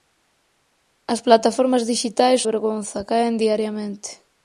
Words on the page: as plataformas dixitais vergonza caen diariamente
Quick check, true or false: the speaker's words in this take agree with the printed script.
true